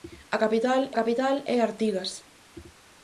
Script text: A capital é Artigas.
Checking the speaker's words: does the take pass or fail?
fail